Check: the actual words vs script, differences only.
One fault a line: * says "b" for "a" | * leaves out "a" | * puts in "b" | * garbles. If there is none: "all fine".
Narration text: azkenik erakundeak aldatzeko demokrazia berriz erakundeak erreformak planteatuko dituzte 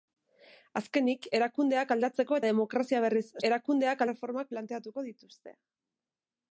all fine